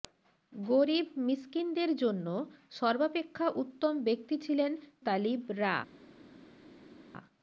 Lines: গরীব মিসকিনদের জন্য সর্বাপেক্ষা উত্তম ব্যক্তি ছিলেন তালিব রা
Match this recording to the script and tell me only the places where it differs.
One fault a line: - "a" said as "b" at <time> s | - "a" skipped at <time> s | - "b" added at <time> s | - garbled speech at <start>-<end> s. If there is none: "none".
none